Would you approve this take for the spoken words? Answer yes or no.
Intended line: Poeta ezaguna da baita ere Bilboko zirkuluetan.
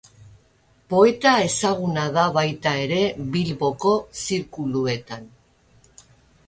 yes